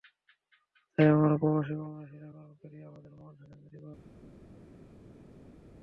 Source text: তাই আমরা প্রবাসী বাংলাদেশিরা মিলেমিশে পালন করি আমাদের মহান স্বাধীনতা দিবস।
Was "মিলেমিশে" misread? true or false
true